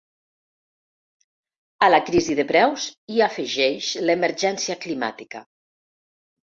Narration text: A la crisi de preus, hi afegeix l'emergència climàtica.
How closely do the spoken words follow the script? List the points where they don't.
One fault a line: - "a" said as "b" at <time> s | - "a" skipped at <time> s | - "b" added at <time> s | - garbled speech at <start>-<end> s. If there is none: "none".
none